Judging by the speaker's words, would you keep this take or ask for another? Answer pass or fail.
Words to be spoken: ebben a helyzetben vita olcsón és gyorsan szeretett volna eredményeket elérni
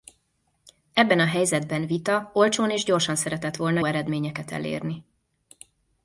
pass